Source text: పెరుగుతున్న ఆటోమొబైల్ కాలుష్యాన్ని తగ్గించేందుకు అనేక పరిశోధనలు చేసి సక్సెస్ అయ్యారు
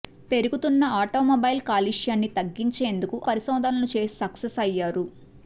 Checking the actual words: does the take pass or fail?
fail